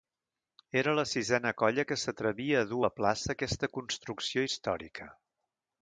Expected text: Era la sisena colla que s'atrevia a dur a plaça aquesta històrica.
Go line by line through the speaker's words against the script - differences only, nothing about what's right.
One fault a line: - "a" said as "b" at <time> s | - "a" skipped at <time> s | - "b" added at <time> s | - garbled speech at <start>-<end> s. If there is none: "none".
- "construcció" added at 3.8 s